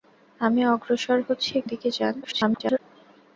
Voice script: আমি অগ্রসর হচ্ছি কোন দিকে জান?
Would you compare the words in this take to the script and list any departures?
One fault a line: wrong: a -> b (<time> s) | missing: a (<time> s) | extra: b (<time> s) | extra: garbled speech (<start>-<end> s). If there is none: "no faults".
missing: কোন (1.5 s)
extra: garbled speech (2.2-2.8 s)